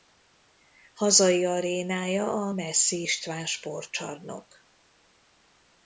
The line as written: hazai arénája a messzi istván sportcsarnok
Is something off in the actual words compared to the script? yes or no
no